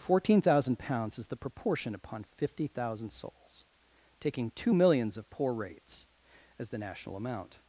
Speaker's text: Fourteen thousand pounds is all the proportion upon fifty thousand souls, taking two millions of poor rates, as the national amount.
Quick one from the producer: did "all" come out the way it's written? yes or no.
no